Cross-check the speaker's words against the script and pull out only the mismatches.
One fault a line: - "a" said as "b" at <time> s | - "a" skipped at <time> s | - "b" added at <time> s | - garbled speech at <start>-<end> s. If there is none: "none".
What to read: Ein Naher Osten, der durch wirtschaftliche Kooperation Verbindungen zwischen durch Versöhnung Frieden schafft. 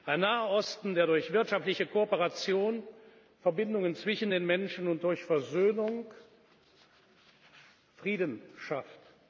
- "den Menschen und" added at 4.3 s